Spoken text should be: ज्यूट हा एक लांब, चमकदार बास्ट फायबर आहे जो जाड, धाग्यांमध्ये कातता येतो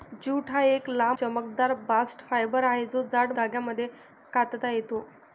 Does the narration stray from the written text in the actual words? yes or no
no